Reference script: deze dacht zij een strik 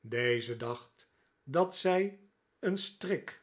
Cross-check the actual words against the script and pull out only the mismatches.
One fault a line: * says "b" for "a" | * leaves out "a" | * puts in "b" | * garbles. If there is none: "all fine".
* puts in "dat"